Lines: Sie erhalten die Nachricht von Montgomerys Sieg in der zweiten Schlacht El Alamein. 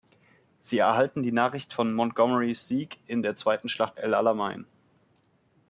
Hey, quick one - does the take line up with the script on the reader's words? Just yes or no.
yes